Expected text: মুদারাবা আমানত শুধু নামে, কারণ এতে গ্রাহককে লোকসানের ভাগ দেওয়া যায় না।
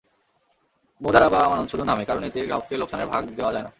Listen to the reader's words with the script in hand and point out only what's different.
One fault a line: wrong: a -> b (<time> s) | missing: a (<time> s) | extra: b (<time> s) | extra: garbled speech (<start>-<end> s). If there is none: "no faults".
no faults